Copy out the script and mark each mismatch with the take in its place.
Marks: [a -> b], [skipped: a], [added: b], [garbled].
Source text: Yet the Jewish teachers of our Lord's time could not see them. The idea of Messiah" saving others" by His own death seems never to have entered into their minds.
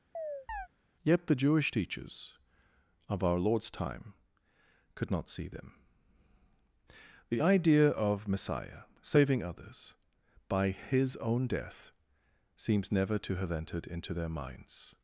Yet the Jewish teachers of our Lord's time could not see them. The idea of Messiah" saving others" by His own death seems never to have entered into their minds.